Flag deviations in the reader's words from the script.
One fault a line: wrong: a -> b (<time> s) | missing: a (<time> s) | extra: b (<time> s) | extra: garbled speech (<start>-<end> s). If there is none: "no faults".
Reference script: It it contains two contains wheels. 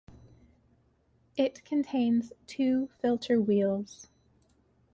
missing: it (1.6 s)
wrong: contains -> filter (3.0 s)